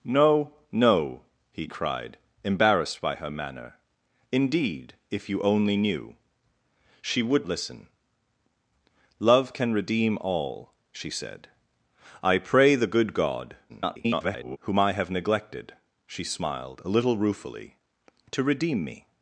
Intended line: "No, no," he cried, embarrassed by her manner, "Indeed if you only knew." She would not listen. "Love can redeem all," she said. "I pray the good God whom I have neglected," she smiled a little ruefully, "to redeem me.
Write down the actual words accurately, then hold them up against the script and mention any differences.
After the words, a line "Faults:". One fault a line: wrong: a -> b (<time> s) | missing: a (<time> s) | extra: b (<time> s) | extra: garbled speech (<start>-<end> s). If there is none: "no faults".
"No, no," he cried, embarrassed by her manner, "Indeed if you only knew." She would listen. "Love can redeem all," she said. "I pray the good God [garbled] whom I have neglected," she smiled a little ruefully, "to redeem me.
Faults:
missing: not (7.5 s)
extra: garbled speech (13.7-14.6 s)